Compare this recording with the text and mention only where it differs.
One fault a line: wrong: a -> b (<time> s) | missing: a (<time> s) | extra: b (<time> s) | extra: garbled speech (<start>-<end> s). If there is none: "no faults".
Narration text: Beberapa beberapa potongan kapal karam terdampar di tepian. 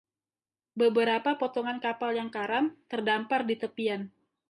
missing: beberapa (1.4 s)
extra: yang (2.2 s)